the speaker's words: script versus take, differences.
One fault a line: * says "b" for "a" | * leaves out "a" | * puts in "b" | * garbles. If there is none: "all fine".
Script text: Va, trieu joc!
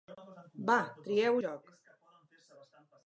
all fine